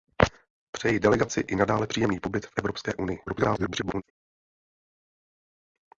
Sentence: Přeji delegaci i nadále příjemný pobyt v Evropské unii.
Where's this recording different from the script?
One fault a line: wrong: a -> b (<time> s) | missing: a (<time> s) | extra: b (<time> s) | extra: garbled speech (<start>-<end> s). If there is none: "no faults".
extra: garbled speech (3.3-4.0 s)